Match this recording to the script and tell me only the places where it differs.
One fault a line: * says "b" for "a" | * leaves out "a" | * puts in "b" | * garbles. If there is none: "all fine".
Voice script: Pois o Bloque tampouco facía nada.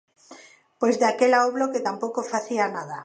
* puts in "daquela"